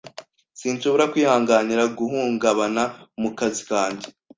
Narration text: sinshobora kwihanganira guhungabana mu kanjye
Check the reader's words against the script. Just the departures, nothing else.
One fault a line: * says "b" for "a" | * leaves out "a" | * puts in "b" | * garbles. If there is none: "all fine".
* puts in "kazi"